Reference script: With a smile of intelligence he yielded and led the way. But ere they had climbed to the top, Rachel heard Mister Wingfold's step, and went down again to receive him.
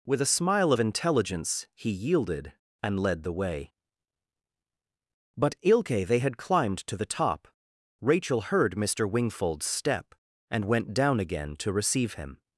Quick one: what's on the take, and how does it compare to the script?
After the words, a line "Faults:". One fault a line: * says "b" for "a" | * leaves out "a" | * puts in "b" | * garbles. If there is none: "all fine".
With a smile of intelligence he yielded and led the way. But ilke they had climbed to the top, Rachel heard Mister Wingfold's step, and went down again to receive him.
Faults:
* says "ilke" for "ere"